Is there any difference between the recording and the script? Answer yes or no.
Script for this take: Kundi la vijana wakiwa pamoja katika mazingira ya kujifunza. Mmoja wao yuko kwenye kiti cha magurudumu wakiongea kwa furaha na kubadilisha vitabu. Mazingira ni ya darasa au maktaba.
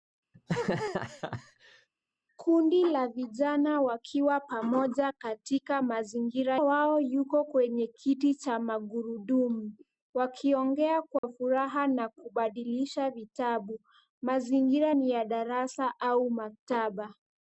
yes